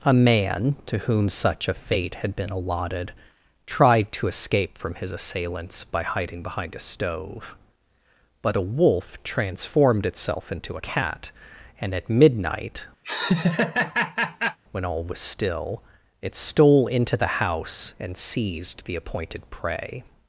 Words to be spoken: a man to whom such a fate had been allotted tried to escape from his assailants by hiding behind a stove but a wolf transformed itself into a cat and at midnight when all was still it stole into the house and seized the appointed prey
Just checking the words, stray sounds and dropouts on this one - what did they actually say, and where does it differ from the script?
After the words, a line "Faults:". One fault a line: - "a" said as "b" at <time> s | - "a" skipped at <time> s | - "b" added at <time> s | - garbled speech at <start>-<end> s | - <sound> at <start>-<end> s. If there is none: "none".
a man to whom such a fate had been allotted tried to escape from his assailants by hiding behind a stove but a wolf transformed itself into cat and at midnight when all was still it stole into the house and seized the appointed prey
Faults:
- "a" skipped at 10.8 s
- laugh at 13.0-14.6 s